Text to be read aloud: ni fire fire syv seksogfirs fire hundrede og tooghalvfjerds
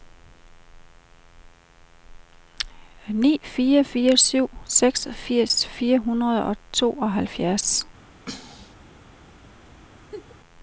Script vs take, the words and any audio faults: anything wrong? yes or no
yes